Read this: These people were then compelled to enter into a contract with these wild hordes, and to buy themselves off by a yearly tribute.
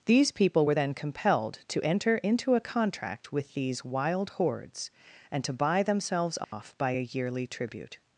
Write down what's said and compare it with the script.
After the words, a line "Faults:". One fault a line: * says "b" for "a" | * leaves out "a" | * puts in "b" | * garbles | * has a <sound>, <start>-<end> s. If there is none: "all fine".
These people were then compelled to enter into a contract with these wild hordes, and to buy themselves off by a yearly tribute.
Faults:
* has a dropout, 6.4-6.5 s